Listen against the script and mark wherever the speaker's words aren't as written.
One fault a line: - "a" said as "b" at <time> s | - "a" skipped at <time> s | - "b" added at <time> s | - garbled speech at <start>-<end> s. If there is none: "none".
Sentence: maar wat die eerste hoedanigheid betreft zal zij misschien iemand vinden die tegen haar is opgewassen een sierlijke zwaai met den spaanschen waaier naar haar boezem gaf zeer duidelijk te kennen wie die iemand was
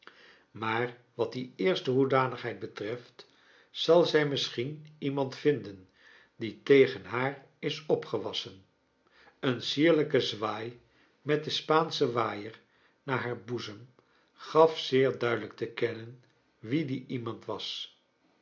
none